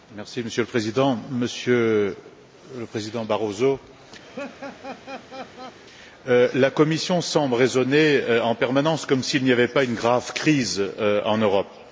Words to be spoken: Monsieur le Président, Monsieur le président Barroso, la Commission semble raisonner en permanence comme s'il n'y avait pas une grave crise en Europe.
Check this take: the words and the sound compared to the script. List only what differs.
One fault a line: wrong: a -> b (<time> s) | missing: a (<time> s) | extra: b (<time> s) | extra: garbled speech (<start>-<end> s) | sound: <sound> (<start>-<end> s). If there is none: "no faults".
sound: laugh (4.2-5.8 s)